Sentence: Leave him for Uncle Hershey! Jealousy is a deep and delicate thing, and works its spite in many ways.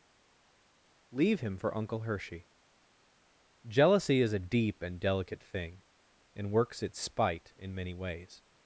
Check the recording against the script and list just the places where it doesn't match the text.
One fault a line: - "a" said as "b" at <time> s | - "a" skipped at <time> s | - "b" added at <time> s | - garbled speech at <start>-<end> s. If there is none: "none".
none